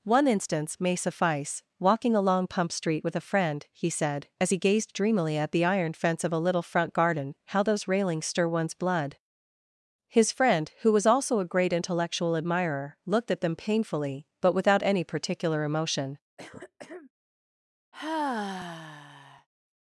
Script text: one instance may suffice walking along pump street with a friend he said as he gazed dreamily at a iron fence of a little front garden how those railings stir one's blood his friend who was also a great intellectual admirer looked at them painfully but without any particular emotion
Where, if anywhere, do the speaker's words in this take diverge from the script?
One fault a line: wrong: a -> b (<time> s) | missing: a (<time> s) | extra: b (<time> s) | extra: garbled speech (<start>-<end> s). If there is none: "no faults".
wrong: a -> the (5.5 s)